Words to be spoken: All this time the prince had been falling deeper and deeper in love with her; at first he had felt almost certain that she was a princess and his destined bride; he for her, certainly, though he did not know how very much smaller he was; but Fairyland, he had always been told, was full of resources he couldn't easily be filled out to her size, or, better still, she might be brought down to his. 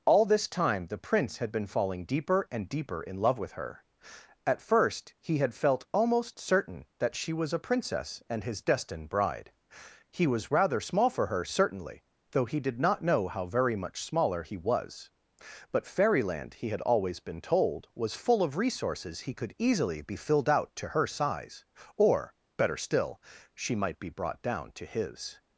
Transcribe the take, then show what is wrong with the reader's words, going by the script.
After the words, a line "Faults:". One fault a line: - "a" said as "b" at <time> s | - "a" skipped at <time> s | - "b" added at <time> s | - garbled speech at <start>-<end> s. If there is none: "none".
All this time the prince had been falling deeper and deeper in love with her; at first he had felt almost certain that she was a princess and his destined bride; he was rather small for her, certainly, though he did not know how very much smaller he was; but Fairyland, he had always been told, was full of resources he could easily be filled out to her size, or, better still, she might be brought down to his.
Faults:
- "was rather small" added at 10.2 s
- "couldn't" said as "could" at 19.3 s